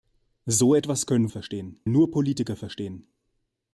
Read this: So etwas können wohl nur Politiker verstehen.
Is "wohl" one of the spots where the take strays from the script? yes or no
yes